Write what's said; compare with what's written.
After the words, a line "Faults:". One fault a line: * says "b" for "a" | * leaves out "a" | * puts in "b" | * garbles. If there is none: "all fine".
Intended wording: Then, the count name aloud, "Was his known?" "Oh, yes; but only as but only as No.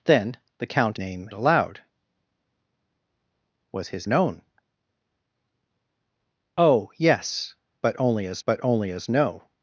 Then, the count name aloud, "Was his known?" "Oh, yes; but only as but only as No.
Faults:
all fine